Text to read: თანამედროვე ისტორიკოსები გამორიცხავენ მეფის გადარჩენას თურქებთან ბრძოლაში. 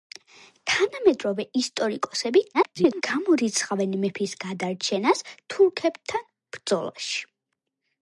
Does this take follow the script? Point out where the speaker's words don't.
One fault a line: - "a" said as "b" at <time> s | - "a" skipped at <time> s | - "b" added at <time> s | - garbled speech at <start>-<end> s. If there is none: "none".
- garbled speech at 2.5-3.0 s